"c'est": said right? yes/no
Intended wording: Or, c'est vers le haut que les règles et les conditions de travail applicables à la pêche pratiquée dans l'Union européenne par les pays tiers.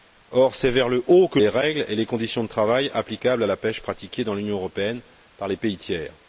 yes